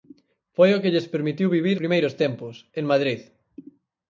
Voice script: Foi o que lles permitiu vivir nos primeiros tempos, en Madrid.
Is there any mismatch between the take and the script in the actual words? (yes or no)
yes